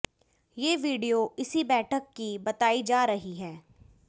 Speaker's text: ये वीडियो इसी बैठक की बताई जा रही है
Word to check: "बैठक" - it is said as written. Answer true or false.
true